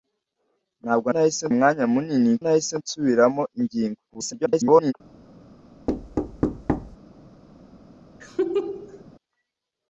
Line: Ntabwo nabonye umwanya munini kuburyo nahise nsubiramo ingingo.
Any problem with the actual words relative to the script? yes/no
yes